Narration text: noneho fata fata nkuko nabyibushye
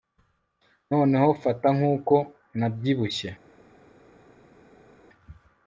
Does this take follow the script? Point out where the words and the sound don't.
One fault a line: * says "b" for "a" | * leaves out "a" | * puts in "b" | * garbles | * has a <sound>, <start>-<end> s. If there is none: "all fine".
* leaves out "fata"